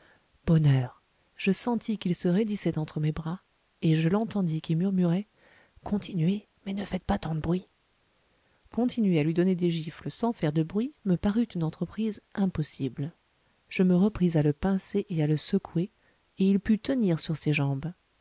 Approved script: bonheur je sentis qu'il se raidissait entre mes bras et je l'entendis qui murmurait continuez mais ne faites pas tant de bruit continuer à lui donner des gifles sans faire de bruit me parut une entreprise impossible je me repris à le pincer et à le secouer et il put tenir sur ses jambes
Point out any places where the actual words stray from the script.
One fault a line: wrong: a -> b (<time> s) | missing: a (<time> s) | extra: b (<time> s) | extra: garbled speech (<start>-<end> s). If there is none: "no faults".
no faults